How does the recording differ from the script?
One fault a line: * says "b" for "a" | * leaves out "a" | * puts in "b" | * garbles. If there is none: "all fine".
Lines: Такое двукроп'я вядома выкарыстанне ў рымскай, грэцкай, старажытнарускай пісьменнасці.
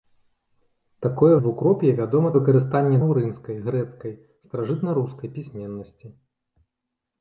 all fine